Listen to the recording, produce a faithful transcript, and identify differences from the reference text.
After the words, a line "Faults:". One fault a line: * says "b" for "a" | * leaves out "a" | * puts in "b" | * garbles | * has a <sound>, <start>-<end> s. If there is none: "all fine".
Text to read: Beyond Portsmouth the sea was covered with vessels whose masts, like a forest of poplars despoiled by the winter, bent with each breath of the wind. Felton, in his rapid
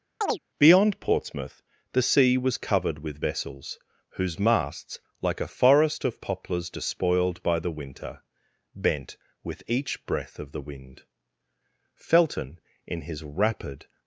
Beyond Portsmouth the sea was covered with vessels whose masts, like a forest of poplars despoiled by the winter, bent with each breath of the wind. Felton, in his rapid
Faults:
* has a chirp, 0.2-0.4 s